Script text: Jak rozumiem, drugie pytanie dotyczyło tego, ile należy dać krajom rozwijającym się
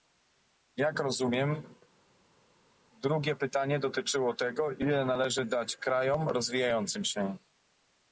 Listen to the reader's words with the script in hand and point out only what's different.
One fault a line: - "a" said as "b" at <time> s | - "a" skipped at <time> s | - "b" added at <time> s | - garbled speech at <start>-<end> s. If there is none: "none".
none